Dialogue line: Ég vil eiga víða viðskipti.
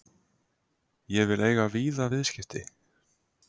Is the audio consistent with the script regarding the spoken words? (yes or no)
yes